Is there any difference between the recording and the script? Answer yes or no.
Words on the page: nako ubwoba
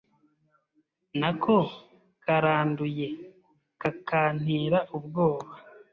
yes